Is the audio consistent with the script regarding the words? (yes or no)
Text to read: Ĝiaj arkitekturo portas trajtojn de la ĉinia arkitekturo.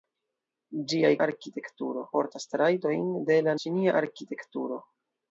yes